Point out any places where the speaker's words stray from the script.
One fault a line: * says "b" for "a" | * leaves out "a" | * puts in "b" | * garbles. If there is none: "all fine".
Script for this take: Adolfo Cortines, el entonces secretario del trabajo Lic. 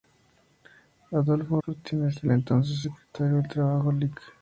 all fine